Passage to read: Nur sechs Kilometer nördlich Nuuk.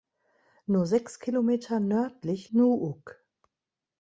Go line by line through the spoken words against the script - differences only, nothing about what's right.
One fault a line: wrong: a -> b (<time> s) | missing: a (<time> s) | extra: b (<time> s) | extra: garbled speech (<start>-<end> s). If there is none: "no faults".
no faults